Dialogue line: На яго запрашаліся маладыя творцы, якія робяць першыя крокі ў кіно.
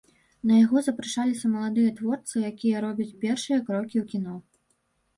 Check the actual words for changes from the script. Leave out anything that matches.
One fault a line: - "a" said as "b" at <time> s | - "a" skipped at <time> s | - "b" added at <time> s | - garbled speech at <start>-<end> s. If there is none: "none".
none